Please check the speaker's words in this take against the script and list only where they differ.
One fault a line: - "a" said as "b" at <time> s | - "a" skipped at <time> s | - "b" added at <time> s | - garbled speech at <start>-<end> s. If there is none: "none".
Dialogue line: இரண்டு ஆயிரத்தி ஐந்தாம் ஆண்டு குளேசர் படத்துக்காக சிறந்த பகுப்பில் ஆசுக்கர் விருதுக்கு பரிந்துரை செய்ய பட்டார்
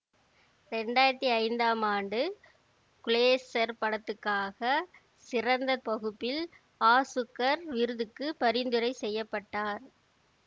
none